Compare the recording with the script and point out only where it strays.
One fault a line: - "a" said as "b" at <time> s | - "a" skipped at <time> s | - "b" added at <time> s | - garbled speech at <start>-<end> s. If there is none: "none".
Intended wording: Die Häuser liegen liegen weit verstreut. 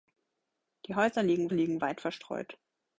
none